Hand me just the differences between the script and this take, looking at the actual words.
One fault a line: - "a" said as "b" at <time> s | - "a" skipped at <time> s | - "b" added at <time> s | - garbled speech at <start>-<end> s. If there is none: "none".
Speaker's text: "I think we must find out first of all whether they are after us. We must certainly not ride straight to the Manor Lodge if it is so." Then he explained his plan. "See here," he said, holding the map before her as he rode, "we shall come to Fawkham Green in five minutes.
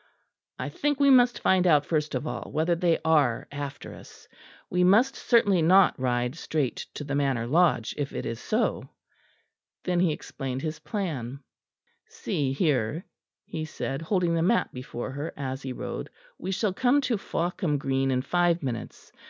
none